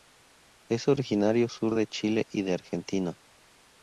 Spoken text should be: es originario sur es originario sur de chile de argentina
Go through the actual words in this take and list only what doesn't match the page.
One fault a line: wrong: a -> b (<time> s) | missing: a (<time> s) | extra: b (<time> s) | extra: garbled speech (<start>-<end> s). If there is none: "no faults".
missing: es originario sur (1.8 s)
extra: y (2.3 s)